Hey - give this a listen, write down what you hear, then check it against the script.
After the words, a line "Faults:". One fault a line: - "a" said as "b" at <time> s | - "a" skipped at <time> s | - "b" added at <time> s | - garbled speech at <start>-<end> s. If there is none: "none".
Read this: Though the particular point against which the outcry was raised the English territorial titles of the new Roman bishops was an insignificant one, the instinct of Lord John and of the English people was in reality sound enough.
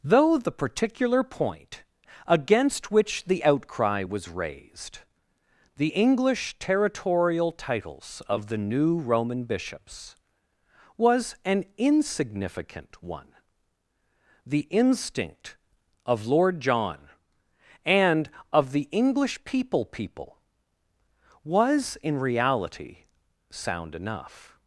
Though the particular point against which the outcry was raised the English territorial titles of the new Roman bishops was an insignificant one, the instinct of Lord John and of the English people people was in reality sound enough.
Faults:
- "people" added at 19.8 s